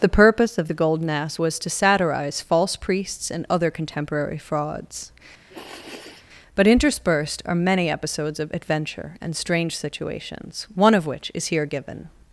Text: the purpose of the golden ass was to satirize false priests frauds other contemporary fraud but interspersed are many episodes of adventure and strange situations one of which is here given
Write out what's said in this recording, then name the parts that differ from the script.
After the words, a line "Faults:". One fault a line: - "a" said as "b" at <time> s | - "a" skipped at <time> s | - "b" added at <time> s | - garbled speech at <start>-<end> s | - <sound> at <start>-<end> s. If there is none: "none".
the purpose of the golden ass was to satirize false priests and other contemporary frauds but interspersed are many episodes of adventure and strange situations one of which is here given
Faults:
- "frauds" said as "and" at 3.3 s
- "fraud" said as "frauds" at 4.4 s
- sniff at 5.5-6.3 s